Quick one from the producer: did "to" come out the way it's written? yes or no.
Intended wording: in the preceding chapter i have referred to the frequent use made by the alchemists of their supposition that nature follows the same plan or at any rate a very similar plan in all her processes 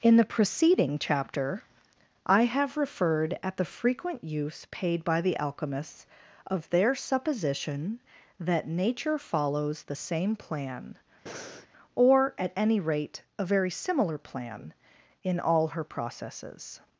no